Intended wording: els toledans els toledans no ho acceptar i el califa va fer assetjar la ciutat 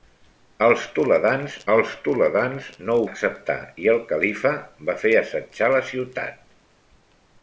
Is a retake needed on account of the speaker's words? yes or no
no